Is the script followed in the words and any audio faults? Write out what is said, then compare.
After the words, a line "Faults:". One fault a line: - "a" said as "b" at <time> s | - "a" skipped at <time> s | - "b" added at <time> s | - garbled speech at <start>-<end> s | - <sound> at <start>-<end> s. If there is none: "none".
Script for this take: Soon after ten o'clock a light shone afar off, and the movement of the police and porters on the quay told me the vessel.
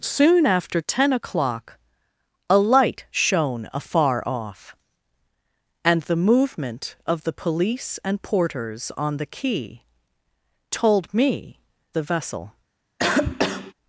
Soon after ten o'clock a light shone afar off, and the movement of the police and porters on the quay told me the vessel.
Faults:
- cough at 13.0-13.7 s